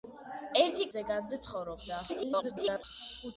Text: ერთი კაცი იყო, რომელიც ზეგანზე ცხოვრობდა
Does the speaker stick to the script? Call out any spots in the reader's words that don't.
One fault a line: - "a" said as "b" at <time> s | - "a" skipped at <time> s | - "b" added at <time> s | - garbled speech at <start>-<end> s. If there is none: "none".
- "კაცი იყო რომელიც" skipped at 0.9 s
- garbled speech at 2.1-2.8 s